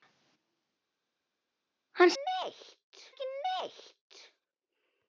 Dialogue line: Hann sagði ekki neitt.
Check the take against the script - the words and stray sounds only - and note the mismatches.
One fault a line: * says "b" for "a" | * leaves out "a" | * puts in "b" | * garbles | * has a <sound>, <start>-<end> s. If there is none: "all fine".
* says "neitt" for "sagði"